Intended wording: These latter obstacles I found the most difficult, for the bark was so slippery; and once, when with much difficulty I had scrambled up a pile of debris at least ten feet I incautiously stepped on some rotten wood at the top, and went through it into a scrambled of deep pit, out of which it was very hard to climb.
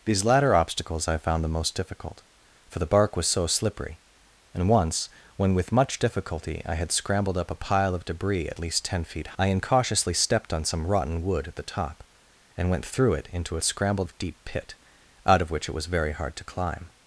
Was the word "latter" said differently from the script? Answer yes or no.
no